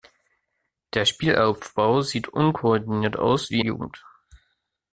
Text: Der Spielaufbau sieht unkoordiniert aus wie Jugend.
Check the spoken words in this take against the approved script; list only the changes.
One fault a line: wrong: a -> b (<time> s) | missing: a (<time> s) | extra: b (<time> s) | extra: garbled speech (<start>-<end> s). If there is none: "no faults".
no faults